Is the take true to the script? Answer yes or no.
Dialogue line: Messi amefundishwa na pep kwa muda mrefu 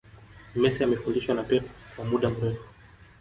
yes